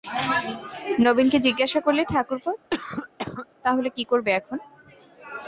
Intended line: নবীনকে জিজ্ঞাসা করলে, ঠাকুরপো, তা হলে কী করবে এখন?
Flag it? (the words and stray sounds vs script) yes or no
yes